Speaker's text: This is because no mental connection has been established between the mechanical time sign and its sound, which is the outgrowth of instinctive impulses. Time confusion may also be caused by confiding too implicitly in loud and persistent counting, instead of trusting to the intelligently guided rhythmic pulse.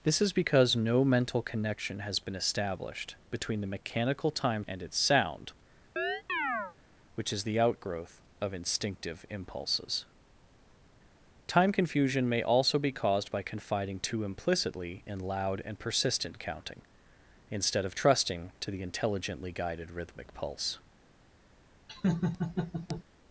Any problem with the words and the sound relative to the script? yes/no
yes